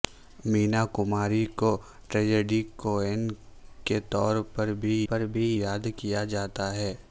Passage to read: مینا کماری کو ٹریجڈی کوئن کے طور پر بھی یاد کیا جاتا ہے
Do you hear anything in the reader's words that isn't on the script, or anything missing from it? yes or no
yes